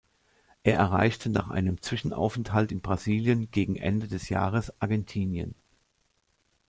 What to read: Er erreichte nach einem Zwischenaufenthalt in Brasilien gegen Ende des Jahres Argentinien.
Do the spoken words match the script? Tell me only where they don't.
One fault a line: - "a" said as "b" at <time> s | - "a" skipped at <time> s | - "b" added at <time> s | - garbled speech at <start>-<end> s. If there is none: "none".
none